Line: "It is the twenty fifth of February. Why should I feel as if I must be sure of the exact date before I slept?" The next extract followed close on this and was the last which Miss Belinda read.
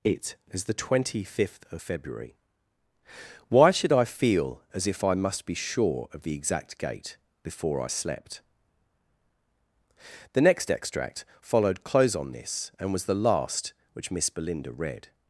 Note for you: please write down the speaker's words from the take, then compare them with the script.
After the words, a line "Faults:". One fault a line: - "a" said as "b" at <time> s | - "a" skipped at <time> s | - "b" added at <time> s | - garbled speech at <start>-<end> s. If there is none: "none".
"It is the twenty fifth of February. Why should I feel as if I must be sure of the exact gate before I slept?" The next extract followed close on this and was the last which Miss Belinda read.
Faults:
- "date" said as "gate" at 6.8 s